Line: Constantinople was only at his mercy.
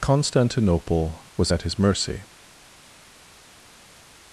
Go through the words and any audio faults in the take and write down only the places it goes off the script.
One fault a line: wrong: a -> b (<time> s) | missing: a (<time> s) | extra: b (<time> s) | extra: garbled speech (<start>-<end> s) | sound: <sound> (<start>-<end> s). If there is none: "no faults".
missing: only (1.5 s)